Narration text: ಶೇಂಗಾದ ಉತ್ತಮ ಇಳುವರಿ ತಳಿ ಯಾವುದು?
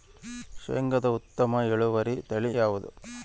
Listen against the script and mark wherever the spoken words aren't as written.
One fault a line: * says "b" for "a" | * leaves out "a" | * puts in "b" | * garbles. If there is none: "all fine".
all fine